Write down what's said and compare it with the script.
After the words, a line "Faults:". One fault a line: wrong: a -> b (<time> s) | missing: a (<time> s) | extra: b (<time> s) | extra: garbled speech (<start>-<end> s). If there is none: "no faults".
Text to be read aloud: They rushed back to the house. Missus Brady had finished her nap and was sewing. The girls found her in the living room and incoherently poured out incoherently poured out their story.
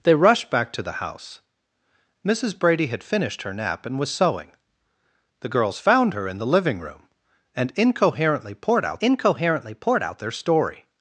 They rushed back to the house. Missus Brady had finished her nap and was sewing. The girls found her in the living room and incoherently poured out incoherently poured out their story.
Faults:
no faults